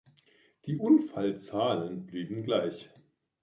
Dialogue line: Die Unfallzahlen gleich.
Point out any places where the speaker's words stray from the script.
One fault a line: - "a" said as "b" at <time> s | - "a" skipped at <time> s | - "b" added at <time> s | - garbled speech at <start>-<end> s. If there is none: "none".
- "blieben" added at 2.1 s